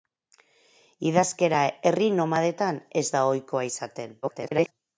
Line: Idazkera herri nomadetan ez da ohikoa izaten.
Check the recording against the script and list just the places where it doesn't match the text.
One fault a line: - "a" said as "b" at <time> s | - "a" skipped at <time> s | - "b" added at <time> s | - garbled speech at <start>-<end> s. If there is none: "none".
- garbled speech at 4.2-4.7 s